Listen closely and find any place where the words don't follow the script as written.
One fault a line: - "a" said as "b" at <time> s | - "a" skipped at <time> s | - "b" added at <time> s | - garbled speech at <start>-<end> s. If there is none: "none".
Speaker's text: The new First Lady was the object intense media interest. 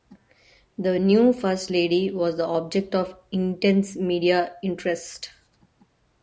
- "of" added at 3.0 s